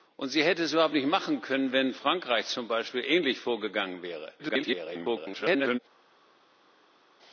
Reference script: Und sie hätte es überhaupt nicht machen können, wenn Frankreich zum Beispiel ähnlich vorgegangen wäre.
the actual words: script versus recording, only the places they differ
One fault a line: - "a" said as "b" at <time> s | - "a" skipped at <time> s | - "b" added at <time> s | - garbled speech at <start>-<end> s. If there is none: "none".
- garbled speech at 4.4-5.8 s